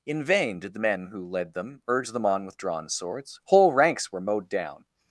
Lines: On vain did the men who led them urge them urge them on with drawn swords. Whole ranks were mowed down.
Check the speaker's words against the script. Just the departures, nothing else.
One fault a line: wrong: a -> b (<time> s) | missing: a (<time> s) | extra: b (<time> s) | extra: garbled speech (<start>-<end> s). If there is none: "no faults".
wrong: On -> In (0.0 s)
missing: urge them (2.2 s)